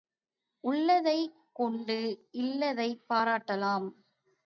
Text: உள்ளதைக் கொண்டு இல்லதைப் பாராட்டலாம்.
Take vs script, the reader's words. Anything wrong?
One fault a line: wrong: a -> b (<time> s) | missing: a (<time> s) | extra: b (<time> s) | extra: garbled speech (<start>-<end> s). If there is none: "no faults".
no faults